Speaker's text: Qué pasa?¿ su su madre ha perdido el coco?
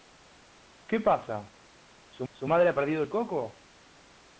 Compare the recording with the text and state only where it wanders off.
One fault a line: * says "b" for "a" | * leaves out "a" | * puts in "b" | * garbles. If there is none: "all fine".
all fine